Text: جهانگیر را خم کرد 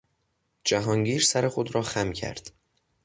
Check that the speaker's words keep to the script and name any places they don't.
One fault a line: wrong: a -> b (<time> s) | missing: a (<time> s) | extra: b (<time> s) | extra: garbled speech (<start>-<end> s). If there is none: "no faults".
extra: سر خود (1.2 s)